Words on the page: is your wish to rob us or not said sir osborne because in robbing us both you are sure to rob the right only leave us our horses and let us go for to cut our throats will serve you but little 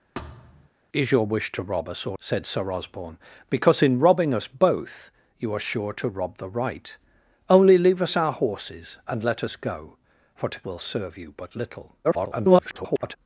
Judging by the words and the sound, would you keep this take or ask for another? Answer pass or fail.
fail